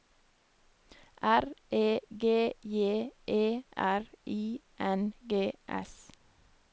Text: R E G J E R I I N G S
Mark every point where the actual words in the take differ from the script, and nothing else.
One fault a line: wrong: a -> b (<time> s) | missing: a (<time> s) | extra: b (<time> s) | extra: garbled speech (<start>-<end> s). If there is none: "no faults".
missing: I (4.6 s)